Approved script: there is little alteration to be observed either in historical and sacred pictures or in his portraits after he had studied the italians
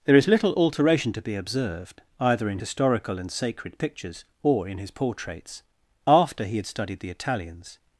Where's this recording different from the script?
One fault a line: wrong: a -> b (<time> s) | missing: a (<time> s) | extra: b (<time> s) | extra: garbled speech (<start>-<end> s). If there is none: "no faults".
no faults